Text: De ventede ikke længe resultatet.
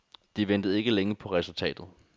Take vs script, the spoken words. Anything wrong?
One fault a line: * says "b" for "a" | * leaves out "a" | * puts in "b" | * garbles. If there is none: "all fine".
* puts in "på"